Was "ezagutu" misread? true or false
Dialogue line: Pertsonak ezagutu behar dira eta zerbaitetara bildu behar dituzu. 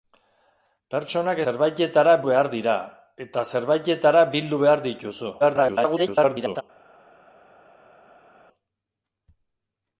true